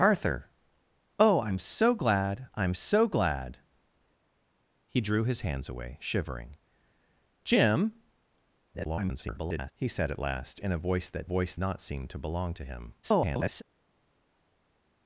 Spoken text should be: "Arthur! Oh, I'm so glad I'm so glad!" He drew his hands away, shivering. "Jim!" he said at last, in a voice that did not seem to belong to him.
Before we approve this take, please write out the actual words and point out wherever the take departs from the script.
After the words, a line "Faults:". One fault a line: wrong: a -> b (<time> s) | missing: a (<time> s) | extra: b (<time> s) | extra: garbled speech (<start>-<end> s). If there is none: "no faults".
"Arthur! Oh, I'm so glad I'm so glad!" He drew his hands away, shivering. "Jim!" [garbled] he said at last, in a voice that voice not seem to belong to him. [garbled]
Faults:
extra: garbled speech (8.7-9.7 s)
wrong: did -> voice (11.3 s)
extra: garbled speech (13.0-13.6 s)